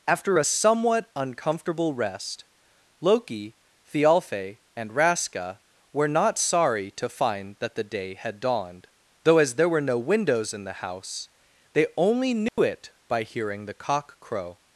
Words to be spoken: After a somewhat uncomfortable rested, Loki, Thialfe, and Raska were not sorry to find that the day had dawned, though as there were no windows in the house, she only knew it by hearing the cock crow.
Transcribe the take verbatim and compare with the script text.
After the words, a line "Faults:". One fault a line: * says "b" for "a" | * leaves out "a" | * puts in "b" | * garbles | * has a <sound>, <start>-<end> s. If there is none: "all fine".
After a somewhat uncomfortable rest, Loki, Thialfe, and Raska were not sorry to find that the day had dawned, though as there were no windows in the house, they only knew it by hearing the cock crow.
Faults:
* says "rest" for "rested"
* says "they" for "she"
* has a dropout, 12.5-12.6 s